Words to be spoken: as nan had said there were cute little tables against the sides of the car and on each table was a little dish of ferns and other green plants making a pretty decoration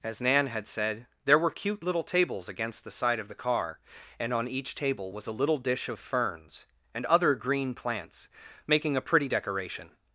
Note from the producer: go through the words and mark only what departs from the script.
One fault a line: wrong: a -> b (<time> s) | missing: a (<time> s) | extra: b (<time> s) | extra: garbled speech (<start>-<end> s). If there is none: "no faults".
wrong: sides -> side (2.9 s)